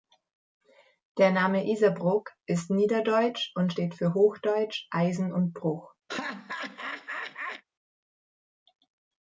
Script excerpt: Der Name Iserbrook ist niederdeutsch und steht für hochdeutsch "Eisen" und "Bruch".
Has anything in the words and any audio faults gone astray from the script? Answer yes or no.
yes